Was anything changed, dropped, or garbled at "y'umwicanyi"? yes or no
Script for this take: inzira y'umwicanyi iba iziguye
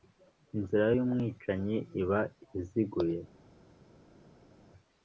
no